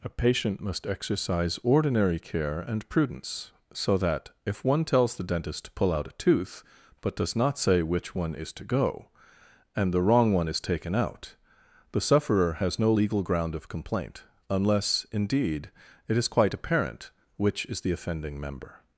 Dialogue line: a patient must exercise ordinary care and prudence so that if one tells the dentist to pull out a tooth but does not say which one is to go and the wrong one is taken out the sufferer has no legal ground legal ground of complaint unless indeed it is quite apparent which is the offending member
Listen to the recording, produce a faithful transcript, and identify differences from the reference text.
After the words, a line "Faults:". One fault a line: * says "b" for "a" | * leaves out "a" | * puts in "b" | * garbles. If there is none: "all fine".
a patient must exercise ordinary care and prudence so that if one tells the dentist to pull out a tooth but does not say which one is to go and the wrong one is taken out the sufferer has no legal ground of complaint unless indeed it is quite apparent which is the offending member
Faults:
* leaves out "legal ground"